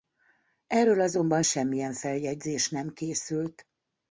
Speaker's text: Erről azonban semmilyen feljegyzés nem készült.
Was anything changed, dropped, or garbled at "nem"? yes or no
no